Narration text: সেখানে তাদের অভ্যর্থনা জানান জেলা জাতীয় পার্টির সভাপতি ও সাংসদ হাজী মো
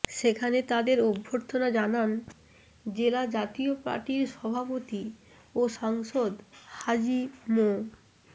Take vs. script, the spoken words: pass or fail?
pass